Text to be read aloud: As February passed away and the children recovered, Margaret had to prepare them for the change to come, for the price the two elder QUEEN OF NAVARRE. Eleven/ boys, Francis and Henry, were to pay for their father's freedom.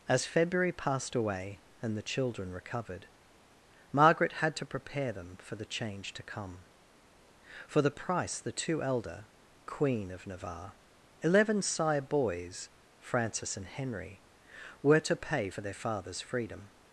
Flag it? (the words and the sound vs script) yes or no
yes